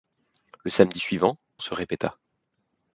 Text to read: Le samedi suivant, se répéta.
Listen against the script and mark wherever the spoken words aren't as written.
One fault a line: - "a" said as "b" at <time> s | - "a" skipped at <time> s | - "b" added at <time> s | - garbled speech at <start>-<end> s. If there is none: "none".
none